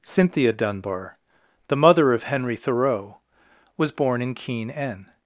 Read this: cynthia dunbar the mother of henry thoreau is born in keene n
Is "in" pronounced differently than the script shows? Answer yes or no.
no